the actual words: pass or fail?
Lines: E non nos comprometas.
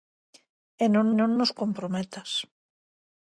fail